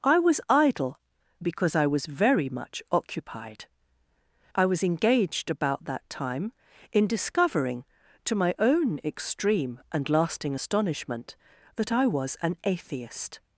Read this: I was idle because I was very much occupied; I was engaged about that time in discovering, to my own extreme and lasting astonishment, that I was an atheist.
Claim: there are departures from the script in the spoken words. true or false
false